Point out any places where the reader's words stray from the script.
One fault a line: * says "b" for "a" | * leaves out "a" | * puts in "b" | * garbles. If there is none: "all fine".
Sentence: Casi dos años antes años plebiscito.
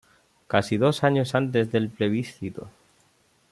* says "del" for "años"